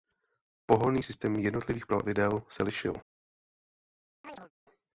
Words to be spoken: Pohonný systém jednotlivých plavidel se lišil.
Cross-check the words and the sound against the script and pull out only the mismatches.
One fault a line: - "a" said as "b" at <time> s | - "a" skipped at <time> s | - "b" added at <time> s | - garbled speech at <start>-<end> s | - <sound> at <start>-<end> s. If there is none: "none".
- chirp at 4.2-4.5 s